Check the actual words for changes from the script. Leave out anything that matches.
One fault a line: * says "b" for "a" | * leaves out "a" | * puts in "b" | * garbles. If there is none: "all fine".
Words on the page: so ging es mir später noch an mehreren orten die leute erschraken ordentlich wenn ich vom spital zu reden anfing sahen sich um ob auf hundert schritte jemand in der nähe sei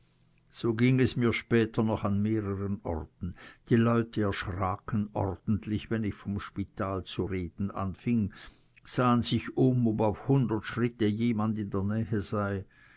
all fine